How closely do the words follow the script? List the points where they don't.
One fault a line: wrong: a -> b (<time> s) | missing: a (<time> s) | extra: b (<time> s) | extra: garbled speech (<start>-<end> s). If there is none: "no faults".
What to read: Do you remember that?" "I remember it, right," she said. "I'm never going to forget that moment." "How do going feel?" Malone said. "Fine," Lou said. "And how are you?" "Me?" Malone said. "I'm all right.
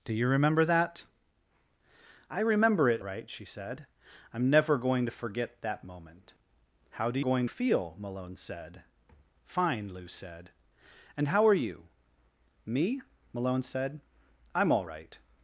no faults